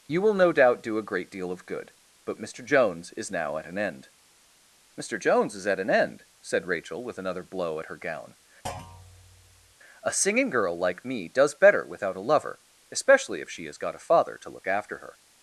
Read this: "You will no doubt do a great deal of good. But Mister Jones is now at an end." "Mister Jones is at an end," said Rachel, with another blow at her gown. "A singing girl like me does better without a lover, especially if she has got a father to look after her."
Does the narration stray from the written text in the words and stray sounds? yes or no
yes